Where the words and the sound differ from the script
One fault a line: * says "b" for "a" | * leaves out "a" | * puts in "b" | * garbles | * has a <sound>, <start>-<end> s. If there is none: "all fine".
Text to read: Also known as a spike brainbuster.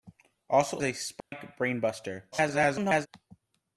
* leaves out "known as"
* has a dropout, 1.2-1.3 s
* garbles